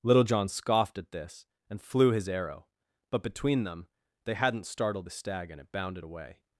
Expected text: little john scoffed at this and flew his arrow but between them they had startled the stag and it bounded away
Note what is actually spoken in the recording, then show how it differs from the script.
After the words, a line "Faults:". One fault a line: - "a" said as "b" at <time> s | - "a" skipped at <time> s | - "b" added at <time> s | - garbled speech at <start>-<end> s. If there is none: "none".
little john scoffed at this and flew his arrow but between them they hadn't startled the stag and it bounded away
Faults:
- "had" said as "hadn't" at 4.3 s